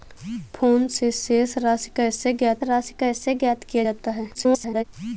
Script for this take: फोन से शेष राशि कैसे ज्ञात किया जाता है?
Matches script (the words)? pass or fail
fail